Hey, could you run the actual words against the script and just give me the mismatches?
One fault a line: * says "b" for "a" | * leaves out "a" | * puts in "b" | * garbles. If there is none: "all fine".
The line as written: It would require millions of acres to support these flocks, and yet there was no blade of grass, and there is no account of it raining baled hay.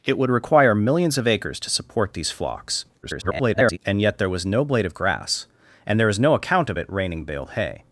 * garbles